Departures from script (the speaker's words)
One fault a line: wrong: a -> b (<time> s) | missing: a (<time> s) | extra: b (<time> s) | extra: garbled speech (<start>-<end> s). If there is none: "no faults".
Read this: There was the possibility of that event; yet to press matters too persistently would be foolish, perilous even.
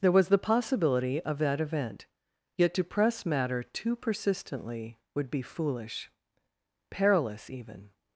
wrong: matters -> matter (3.2 s)